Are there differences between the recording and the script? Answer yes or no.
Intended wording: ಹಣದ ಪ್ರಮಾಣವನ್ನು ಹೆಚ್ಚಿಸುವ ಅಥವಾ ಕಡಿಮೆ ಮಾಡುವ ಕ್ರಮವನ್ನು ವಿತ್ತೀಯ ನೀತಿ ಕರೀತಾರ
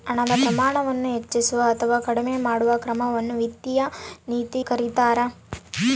no